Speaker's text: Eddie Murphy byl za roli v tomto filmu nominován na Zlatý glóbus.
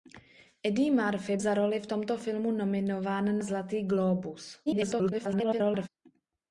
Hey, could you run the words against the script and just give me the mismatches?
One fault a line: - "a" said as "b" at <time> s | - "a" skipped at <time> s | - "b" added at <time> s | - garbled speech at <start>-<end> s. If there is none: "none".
- "byl" skipped at 1.4 s
- "na" skipped at 3.4 s
- garbled speech at 4.7-5.9 s